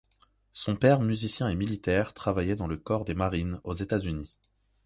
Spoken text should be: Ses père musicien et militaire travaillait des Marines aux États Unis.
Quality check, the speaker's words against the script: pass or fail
fail